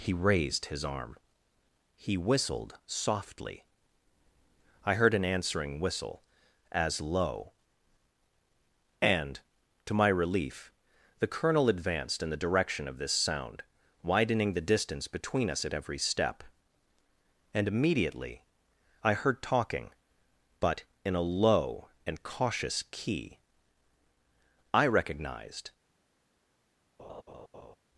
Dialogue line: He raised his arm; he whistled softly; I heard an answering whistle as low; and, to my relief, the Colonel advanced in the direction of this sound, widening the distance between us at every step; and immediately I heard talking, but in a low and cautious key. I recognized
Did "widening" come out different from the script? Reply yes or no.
no